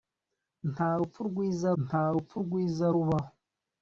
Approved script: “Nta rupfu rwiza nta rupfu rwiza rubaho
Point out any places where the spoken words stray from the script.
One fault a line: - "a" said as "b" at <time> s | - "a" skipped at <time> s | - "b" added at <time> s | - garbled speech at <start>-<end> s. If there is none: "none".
none